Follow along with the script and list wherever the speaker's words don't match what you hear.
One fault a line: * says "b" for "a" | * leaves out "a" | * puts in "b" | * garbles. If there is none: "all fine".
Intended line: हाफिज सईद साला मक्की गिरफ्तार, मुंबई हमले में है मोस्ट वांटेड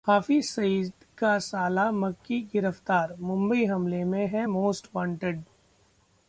* puts in "का"